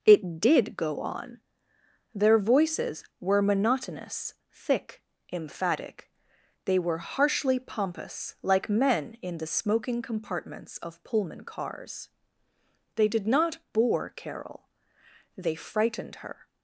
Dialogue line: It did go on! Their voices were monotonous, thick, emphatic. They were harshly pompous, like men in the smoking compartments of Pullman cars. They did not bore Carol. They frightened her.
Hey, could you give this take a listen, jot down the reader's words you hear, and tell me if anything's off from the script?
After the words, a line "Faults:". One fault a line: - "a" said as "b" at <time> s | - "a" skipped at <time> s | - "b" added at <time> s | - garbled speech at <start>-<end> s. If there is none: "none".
It did go on! Their voices were monotonous, thick, emphatic. They were harshly pompous, like men in the smoking compartments of Pullman cars. They did not bore Carol. They frightened her.
Faults:
none